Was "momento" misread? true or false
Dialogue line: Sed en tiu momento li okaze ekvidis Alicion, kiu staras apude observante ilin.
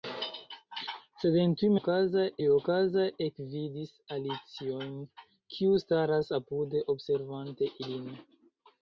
true